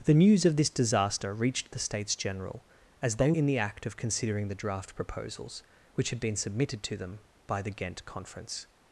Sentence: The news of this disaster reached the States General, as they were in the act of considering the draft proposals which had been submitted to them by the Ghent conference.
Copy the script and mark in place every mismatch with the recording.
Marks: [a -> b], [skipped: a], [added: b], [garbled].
The news of this disaster reached the States General, as they [skipped: were] in the act of considering the draft proposals which had been submitted to them by the Ghent conference.